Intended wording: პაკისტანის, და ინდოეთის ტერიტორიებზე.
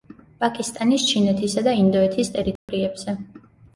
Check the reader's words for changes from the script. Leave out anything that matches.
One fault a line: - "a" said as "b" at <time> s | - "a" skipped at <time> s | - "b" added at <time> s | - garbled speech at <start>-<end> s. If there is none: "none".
- "ჩინეთისა" added at 1.1 s